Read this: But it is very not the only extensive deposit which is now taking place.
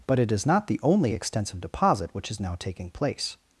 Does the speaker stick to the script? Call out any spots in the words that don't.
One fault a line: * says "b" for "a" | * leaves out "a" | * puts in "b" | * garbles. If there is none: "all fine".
* leaves out "very"